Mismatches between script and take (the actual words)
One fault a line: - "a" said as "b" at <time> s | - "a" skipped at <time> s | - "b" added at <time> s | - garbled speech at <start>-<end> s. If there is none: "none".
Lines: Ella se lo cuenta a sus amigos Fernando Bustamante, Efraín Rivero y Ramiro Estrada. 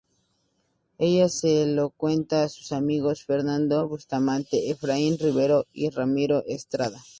none